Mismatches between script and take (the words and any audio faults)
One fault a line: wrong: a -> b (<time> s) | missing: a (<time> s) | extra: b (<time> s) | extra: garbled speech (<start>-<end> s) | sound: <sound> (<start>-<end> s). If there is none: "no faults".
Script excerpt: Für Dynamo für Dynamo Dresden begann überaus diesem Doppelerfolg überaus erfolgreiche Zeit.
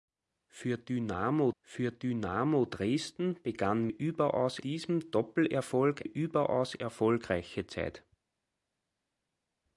no faults